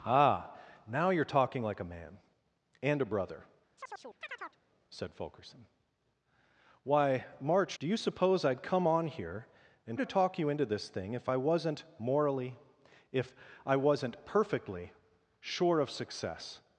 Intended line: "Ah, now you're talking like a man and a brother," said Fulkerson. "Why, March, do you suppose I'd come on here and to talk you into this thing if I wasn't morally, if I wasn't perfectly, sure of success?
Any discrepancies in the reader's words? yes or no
no